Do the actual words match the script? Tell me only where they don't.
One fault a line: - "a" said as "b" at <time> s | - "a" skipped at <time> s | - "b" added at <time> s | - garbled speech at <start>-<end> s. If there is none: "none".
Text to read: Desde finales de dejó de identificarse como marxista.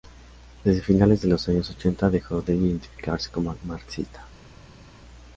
- "los años ochenta" added at 1.3 s